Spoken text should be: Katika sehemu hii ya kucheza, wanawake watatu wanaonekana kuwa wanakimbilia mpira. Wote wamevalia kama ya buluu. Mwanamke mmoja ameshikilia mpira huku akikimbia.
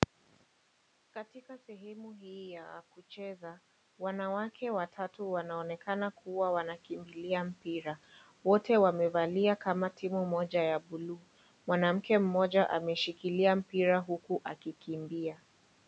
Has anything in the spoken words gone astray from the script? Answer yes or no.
yes